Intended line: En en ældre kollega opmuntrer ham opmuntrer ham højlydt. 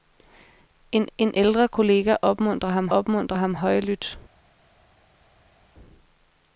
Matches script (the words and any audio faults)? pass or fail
pass